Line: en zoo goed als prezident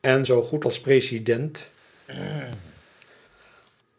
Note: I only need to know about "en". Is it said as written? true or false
true